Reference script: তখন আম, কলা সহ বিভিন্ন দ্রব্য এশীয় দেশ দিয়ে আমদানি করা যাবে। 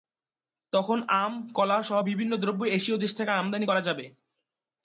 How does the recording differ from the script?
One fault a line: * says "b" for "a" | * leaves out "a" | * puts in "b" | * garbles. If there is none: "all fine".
* says "থেকে" for "দিয়ে"